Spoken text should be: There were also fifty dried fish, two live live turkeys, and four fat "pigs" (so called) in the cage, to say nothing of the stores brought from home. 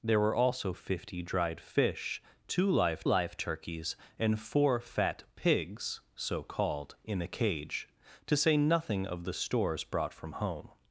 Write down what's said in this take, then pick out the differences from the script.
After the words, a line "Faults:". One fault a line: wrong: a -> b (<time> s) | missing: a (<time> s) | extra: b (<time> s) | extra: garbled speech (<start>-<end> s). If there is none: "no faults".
There were also fifty dried fish, two live live turkeys, and four fat "pigs" (so called) in the cage, to say nothing of the stores brought from home.
Faults:
no faults